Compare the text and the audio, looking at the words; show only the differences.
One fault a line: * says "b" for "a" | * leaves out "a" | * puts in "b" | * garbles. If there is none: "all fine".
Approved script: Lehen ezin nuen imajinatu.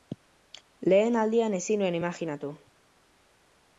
* puts in "aldian"